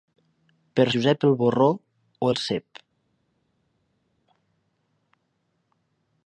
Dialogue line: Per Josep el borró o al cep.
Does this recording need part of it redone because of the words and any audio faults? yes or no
no